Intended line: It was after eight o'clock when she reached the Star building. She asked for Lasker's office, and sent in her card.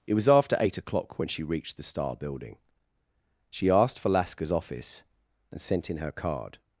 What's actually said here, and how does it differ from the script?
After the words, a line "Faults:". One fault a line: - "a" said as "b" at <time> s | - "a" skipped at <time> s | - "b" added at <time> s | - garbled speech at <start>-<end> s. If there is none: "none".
It was after eight o'clock when she reached the Star building. She asked for Lasker's office, and sent in her card.
Faults:
none